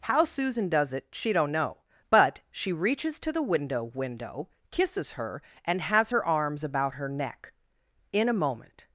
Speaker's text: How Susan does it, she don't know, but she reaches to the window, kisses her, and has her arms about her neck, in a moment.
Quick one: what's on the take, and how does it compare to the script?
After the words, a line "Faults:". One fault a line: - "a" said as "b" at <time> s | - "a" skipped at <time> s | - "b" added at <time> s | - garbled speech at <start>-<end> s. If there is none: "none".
How Susan does it, she don't know, but she reaches to the window window, kisses her, and has her arms about her neck, in a moment.
Faults:
- "window" added at 3.8 s